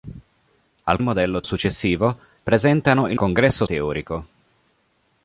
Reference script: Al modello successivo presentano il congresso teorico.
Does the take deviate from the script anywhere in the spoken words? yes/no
no